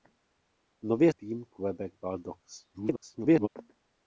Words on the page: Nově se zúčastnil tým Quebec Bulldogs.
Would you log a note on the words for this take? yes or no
yes